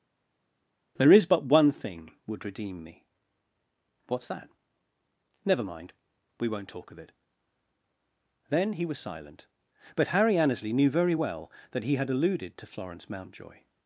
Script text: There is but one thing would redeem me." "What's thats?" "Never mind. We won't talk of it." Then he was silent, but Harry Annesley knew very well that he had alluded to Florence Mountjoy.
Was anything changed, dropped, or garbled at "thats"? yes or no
yes